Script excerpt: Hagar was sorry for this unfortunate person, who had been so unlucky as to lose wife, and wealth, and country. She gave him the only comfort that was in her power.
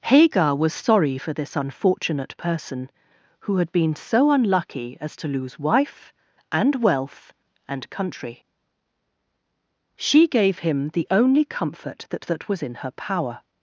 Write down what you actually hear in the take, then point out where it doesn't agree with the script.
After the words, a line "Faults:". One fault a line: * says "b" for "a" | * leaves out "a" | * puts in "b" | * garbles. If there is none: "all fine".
Hagar was sorry for this unfortunate person, who had been so unlucky as to lose wife, and wealth, and country. She gave him the only comfort that that was in her power.
Faults:
* puts in "that"